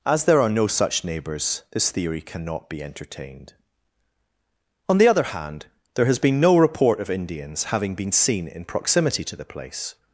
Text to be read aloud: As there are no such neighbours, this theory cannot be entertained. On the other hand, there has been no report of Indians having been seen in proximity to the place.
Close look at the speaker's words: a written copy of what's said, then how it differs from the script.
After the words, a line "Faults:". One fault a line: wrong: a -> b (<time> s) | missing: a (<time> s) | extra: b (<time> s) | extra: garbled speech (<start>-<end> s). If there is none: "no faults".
As there are no such neighbours, this theory cannot be entertained. On the other hand, there has been no report of Indians having been seen in proximity to the place.
Faults:
no faults